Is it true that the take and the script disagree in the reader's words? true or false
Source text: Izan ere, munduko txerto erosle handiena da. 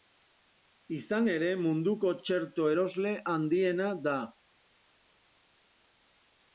false